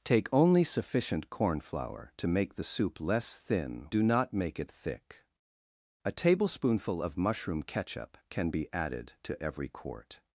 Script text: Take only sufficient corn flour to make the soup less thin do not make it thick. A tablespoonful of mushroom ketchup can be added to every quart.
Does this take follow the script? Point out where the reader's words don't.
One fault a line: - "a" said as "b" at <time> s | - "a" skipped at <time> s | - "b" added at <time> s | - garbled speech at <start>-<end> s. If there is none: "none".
none